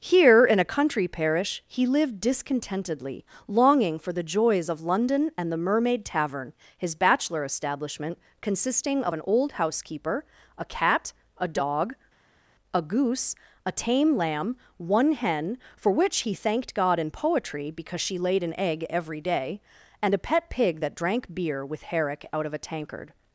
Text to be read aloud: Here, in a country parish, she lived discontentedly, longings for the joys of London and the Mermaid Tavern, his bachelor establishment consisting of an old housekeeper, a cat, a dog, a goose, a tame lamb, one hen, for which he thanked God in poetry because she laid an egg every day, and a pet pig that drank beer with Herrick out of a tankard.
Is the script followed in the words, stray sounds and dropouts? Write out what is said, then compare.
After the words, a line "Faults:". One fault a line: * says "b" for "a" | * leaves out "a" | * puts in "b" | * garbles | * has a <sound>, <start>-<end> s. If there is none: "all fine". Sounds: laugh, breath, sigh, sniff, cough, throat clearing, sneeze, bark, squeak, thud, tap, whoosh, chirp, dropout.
Here, in a country parish, he lived discontentedly, longing for the joys of London and the Mermaid Tavern, his bachelor establishment consisting of an old housekeeper, a cat, a dog, a goose, a tame lamb, one hen, for which he thanked God in poetry because she laid an egg every day, and a pet pig that drank beer with Herrick out of a tankard.
Faults:
* says "he" for "she"
* says "longing" for "longings"